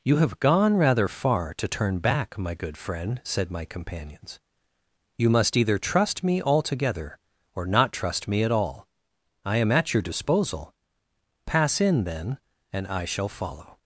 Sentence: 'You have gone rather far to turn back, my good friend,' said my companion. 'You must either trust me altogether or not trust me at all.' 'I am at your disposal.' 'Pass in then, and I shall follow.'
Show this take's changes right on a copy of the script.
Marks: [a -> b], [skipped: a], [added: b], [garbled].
'You have gone rather far to turn back, my good friend,' said my [companion. -> companions] 'You must either trust me altogether or not trust me at all.' 'I am at your disposal.' 'Pass in then, and I shall follow.'